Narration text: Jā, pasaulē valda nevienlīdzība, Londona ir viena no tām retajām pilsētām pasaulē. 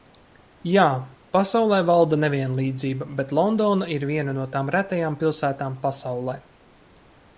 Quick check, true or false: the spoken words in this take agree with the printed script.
false